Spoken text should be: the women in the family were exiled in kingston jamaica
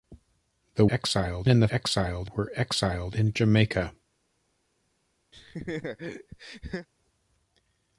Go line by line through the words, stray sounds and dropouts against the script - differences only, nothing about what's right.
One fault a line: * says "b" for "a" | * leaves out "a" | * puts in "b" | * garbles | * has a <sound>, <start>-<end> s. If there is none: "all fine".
* says "exiled" for "women"
* says "exiled" for "family"
* leaves out "kingston"
* has a laugh, 5.3-6.9 s